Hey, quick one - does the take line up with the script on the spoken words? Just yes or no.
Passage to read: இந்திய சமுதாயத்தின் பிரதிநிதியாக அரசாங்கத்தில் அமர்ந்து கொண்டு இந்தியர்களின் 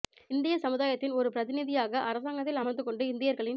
no